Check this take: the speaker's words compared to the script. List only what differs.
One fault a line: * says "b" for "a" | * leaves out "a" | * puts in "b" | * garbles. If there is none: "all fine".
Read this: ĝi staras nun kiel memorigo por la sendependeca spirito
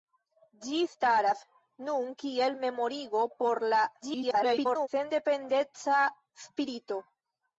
* garbles